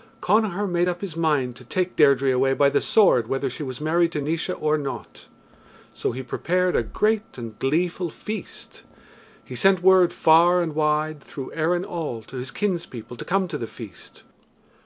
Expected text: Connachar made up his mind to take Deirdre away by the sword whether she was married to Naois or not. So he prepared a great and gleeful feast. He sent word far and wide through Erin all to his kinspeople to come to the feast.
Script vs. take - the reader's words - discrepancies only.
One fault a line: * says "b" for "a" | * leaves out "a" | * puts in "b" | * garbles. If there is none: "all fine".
all fine